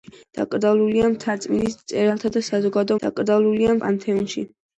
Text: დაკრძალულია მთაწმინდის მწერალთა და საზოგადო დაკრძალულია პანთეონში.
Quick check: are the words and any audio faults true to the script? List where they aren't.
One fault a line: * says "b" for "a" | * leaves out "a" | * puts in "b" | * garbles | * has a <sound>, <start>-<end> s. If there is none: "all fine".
all fine